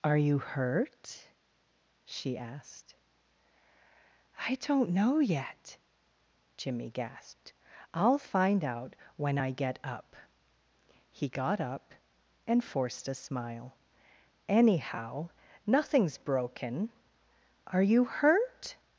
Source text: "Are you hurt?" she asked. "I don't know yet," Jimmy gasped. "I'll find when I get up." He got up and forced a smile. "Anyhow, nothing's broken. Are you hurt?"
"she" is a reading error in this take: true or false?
false